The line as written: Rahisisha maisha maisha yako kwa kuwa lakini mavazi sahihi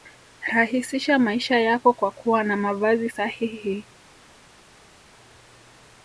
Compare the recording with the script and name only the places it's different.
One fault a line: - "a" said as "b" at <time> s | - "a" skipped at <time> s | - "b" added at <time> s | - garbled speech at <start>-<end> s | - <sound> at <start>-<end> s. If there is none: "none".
- "maisha" skipped at 1.6 s
- "lakini" said as "na" at 2.4 s